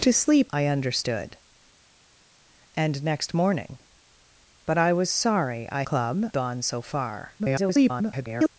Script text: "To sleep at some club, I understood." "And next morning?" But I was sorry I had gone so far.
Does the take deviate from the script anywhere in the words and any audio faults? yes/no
yes